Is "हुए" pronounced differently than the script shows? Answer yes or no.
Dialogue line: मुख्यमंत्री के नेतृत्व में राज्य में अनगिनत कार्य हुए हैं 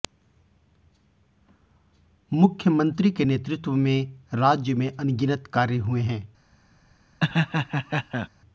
no